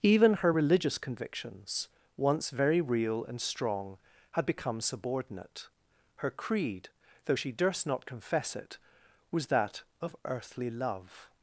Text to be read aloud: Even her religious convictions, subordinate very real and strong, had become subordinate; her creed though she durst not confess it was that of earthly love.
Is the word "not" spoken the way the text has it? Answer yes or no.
yes